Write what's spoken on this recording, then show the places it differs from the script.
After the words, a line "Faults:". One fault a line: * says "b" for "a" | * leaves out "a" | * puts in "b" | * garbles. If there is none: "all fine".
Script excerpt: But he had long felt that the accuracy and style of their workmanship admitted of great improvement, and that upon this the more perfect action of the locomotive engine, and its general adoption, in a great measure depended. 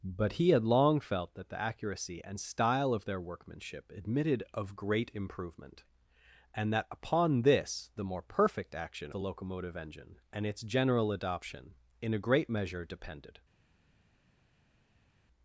But he had long felt that the accuracy and style of their workmanship admitted of great improvement, and that upon this the more perfect action the locomotive engine, and its general adoption, in a great measure depended.
Faults:
* leaves out "of"